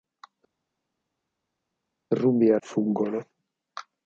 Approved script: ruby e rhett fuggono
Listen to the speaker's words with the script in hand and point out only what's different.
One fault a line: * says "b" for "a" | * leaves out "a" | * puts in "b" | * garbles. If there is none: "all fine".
* leaves out "rhett"